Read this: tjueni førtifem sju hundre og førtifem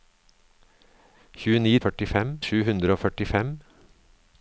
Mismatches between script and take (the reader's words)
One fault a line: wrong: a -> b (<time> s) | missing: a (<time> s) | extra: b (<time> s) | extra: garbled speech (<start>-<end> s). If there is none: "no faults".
no faults